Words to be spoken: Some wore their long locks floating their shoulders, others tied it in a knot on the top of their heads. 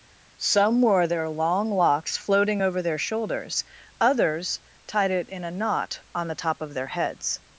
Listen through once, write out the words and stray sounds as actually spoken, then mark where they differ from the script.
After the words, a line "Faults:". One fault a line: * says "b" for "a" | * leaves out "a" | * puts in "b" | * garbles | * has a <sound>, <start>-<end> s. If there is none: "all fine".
Some wore their long locks floating over their shoulders, others tied it in a knot on the top of their heads.
Faults:
* puts in "over"